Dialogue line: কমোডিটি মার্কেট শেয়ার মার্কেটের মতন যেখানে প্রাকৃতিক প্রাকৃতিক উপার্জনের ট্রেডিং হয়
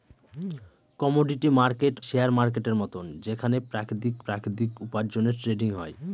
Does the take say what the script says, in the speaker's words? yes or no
yes